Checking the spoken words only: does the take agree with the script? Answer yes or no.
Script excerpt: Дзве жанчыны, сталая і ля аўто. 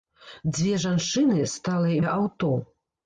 yes